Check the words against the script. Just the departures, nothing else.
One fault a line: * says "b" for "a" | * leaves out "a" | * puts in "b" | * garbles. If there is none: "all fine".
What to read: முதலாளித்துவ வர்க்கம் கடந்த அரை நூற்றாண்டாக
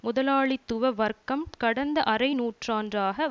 all fine